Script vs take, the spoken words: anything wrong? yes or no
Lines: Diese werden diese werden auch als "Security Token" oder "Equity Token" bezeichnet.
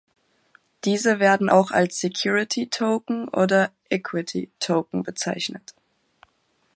yes